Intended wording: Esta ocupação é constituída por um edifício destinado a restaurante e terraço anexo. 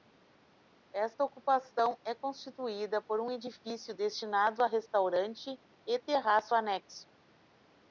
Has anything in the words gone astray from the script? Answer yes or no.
no